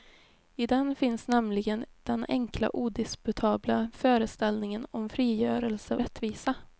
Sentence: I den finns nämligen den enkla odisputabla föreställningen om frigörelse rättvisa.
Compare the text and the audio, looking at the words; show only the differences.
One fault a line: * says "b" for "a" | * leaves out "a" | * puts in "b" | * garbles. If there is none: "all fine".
all fine